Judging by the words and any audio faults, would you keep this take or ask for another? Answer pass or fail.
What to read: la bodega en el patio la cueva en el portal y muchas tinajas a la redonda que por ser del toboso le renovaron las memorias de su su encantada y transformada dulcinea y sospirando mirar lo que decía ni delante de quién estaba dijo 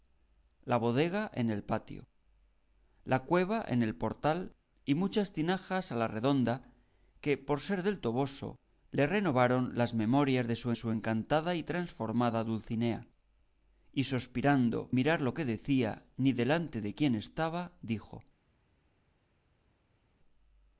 pass